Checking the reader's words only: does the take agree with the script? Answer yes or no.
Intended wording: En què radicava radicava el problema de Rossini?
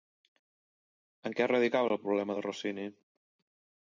no